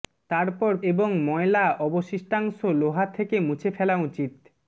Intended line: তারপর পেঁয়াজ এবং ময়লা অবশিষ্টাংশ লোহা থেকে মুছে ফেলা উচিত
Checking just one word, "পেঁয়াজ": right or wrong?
wrong